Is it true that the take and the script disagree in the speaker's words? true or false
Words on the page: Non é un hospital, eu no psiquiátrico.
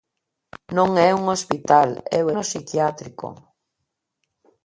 false